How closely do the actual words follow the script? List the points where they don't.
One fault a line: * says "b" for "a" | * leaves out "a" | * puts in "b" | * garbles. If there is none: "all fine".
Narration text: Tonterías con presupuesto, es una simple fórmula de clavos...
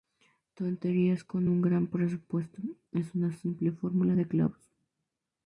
* puts in "un gran"